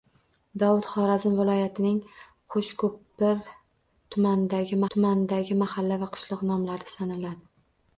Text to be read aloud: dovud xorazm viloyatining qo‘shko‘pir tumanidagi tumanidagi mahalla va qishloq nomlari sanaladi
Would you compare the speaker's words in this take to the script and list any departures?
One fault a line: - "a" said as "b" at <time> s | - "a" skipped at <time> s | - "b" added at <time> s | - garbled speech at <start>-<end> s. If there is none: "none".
none